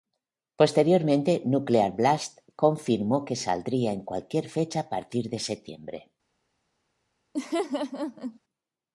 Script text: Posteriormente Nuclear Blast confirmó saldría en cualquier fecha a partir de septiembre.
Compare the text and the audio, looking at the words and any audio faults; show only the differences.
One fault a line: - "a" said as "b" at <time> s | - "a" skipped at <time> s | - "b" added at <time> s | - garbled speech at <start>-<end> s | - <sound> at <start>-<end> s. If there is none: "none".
- "que" added at 3.2 s
- laugh at 7.3-8.4 s